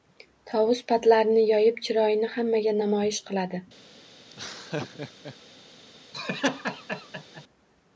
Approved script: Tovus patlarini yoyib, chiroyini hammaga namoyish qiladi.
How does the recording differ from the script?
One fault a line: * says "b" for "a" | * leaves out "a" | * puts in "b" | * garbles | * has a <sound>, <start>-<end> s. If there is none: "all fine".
* has a laugh, 4.3-5.4 s
* has a laugh, 6.1-7.4 s